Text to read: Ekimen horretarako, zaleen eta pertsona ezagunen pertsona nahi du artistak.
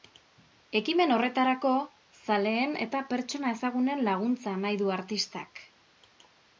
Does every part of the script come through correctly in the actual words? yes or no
no